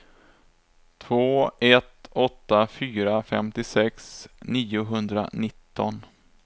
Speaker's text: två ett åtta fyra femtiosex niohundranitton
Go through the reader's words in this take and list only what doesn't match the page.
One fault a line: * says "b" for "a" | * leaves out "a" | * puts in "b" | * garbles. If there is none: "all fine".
all fine